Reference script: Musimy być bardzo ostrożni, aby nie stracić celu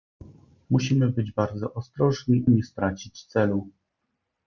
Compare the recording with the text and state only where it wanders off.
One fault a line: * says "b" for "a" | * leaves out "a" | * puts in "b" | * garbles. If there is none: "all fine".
* leaves out "aby"